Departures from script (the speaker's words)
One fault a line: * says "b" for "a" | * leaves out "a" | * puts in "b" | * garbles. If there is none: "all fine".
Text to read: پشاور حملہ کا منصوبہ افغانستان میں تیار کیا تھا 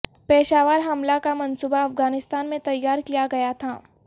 * puts in "گیا"